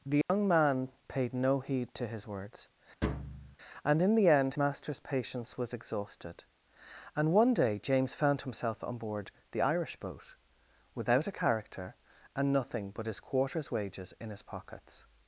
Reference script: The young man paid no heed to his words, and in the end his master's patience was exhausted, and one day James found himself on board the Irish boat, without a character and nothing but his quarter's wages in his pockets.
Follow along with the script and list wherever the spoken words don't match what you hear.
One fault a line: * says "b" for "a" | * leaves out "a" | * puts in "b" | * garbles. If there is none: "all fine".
* leaves out "his"